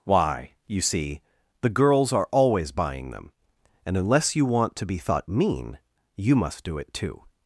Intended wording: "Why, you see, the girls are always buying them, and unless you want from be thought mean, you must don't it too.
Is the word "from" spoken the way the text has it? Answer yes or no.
no